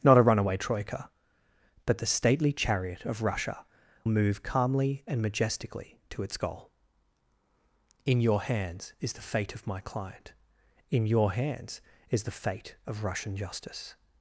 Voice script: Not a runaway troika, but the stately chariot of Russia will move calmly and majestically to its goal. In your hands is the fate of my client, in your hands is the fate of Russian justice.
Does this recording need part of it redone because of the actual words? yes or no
yes